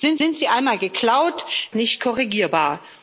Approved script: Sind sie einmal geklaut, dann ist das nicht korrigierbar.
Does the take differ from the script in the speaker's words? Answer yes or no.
yes